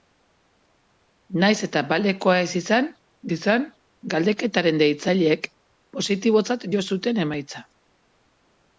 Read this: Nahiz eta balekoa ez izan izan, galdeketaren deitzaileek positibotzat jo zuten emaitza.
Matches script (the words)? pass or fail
pass